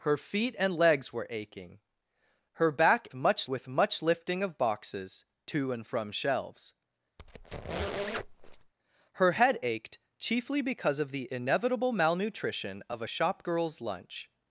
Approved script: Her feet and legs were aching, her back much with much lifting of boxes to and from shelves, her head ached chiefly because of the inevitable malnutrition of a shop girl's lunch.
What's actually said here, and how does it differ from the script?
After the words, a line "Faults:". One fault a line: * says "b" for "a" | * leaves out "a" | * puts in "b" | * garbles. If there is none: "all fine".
Her feet and legs were aching, her back much with much lifting of boxes to and from shelves, her head ached chiefly because of the inevitable malnutrition of a shop girl's lunch.
Faults:
all fine